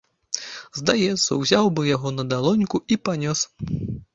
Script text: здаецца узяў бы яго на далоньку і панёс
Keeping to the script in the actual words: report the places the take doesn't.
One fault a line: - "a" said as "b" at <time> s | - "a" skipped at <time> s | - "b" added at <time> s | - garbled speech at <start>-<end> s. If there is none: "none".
none